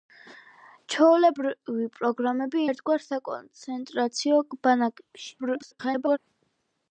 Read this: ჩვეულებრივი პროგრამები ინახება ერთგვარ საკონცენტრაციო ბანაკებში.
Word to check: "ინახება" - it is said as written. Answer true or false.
false